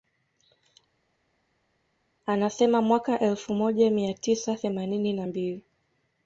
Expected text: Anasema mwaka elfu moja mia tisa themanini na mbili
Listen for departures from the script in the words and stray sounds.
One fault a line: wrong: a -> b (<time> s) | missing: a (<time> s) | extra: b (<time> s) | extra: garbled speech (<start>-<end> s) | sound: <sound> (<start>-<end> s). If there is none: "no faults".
no faults